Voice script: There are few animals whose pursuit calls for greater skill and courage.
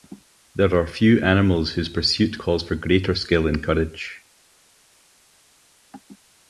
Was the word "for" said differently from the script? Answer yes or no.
no